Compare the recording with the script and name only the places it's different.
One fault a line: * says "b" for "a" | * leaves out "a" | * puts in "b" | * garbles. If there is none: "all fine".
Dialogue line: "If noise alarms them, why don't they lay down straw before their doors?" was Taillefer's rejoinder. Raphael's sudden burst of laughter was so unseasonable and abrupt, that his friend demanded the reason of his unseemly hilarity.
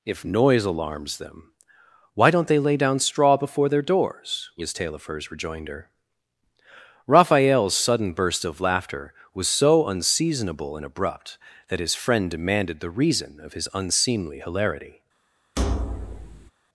all fine